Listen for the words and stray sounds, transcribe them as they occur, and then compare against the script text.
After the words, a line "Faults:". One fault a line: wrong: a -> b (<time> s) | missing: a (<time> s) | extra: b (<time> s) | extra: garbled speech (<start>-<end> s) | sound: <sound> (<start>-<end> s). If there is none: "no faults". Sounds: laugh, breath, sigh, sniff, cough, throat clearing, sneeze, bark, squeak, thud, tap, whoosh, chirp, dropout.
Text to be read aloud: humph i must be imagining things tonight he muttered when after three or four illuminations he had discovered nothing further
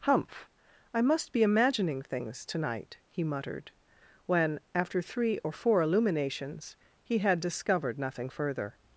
humph i must be imagining things tonight he muttered when after three or four illuminations he had discovered nothing further
Faults:
no faults